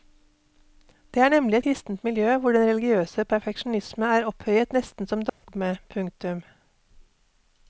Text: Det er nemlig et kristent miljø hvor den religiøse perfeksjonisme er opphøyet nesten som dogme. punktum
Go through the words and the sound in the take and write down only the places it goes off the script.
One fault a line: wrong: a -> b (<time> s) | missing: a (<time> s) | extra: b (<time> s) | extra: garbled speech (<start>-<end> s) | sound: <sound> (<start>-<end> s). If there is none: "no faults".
sound: dropout (5.3-5.4 s)